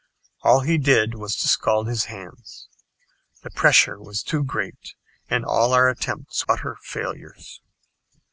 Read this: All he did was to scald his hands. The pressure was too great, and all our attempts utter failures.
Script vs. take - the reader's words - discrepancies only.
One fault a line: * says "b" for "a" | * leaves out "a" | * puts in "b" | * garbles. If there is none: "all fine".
all fine